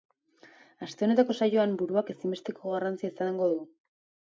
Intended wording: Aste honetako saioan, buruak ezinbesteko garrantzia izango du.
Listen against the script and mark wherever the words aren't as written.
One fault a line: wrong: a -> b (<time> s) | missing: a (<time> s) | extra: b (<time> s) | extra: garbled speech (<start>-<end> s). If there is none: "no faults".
no faults